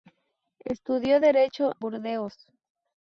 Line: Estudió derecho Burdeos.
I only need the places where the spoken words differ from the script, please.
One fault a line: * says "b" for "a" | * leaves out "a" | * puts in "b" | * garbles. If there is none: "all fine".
all fine